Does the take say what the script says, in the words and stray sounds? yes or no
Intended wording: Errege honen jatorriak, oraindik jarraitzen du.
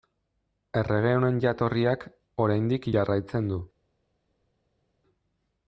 yes